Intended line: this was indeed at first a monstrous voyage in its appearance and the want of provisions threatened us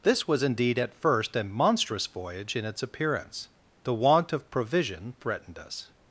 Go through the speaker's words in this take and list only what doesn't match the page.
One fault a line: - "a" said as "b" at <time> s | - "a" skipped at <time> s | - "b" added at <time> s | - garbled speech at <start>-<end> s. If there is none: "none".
- "and" skipped at 3.5 s
- "provisions" said as "provision" at 4.5 s